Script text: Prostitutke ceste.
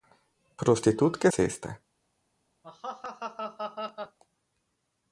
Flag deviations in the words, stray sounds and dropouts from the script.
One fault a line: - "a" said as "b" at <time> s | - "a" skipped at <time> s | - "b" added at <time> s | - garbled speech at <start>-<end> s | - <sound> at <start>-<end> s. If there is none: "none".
- laugh at 2.6-4.2 s